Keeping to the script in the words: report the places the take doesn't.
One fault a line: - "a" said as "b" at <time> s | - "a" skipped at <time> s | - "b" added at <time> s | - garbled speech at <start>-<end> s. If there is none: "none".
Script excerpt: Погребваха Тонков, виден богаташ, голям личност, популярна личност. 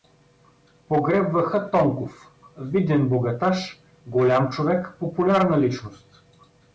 - "личност" said as "човек" at 4.5 s